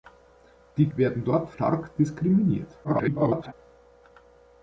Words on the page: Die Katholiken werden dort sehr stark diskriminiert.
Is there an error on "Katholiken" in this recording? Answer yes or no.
yes